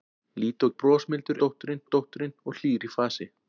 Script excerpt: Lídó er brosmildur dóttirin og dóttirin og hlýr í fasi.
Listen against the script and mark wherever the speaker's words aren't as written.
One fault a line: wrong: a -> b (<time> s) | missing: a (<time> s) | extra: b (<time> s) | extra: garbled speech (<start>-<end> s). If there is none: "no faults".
no faults